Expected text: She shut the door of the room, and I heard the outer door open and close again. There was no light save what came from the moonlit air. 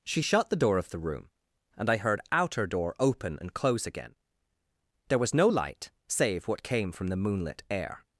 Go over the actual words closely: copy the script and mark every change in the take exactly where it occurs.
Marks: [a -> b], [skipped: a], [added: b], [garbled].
She shut the door of the room, and I heard [skipped: the] outer door open and close again. There was no light save what came from the moonlit air.